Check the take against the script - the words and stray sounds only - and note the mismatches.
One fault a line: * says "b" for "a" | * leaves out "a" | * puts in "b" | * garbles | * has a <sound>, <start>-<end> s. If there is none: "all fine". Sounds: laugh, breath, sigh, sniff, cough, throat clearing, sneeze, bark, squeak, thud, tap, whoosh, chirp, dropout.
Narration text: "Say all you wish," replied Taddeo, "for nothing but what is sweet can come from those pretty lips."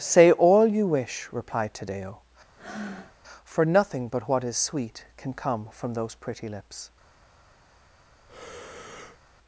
* has a breath, 2.5-3.1 s
* has a breath, 8.3-9.2 s